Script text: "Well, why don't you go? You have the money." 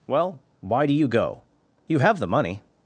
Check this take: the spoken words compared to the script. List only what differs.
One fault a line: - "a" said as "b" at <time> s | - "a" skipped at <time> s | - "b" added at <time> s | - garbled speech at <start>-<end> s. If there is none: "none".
- "don't" said as "do" at 0.8 s